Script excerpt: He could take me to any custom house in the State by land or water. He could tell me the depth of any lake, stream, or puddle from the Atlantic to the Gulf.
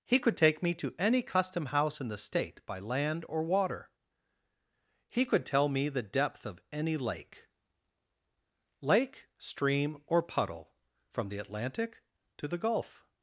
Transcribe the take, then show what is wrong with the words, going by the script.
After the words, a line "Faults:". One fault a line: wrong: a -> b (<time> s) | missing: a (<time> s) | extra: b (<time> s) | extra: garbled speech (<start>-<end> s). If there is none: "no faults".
He could take me to any custom house in the State by land or water. He could tell me the depth of any lake lake, stream, or puddle from the Atlantic to the Gulf.
Faults:
extra: lake (8.8 s)